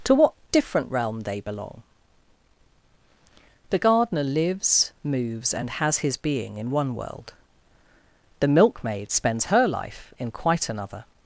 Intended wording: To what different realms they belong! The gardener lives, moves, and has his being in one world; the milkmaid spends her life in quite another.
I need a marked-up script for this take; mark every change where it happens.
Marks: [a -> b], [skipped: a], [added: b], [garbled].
To what different [realms -> realm] they belong! The gardener lives, moves, and has his being in one world; the milkmaid spends her life in quite another.